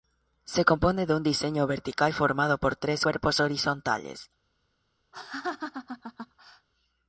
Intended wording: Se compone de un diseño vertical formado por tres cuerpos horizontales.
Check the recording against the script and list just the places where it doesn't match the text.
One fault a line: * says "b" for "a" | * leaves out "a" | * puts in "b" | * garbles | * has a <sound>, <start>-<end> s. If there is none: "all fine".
* has a laugh, 5.1-6.7 s